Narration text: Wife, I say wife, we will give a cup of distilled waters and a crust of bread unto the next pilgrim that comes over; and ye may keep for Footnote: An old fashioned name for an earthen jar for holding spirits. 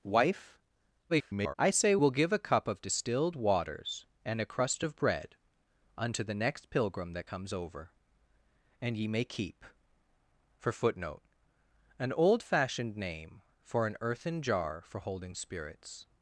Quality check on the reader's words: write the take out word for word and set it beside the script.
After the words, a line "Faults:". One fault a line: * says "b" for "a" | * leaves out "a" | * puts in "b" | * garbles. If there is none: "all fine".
Wife, [garbled] I say will give a cup of distilled waters and a crust of bread unto the next pilgrim that comes over; and ye may keep for Footnote: An old fashioned name for an earthen jar for holding spirits.
Faults:
* garbles
* leaves out "wife we"